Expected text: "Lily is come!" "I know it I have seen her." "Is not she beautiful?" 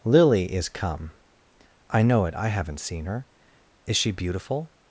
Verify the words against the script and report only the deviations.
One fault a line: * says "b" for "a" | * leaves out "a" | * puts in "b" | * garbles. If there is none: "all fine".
* says "haven't" for "have"
* leaves out "not"